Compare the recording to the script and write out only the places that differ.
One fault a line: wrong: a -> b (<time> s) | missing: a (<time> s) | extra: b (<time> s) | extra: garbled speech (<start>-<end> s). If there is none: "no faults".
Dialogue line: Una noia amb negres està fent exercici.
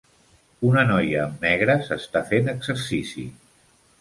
no faults